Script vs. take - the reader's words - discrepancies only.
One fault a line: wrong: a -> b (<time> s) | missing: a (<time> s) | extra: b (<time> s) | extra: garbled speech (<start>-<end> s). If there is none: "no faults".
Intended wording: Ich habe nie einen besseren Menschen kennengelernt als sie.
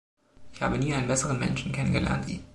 missing: als (2.3 s)